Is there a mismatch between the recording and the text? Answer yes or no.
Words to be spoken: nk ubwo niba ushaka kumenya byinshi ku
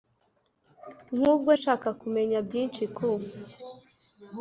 yes